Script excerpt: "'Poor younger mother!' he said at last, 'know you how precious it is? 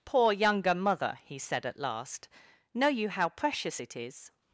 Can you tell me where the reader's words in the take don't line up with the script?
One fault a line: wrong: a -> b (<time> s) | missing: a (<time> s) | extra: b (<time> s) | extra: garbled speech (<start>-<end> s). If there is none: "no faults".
no faults